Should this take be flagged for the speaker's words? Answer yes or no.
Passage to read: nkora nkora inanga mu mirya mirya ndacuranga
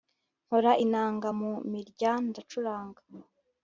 yes